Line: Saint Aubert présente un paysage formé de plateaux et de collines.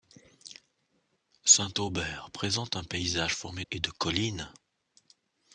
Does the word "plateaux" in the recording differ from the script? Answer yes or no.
yes